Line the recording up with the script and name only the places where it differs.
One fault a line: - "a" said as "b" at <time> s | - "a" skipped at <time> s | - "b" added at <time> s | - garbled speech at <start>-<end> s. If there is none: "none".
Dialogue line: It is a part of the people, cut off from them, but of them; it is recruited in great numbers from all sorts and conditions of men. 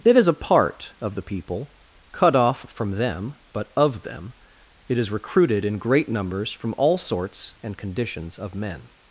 none